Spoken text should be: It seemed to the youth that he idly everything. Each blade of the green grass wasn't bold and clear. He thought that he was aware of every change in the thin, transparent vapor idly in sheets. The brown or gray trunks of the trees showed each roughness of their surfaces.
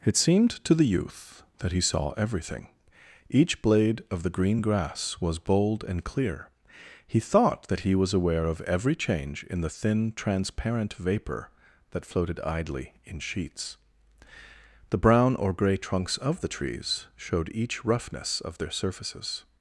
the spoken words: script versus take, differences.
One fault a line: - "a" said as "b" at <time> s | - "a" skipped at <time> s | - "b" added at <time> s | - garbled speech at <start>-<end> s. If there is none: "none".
- "idly" said as "saw" at 1.8 s
- "wasn't" said as "was" at 5.2 s
- "that floated" added at 11.9 s